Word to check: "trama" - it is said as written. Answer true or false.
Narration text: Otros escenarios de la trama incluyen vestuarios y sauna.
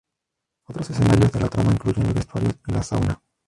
true